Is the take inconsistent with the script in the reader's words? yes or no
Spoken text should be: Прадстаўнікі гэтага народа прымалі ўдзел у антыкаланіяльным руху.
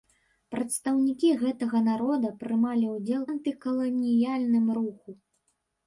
yes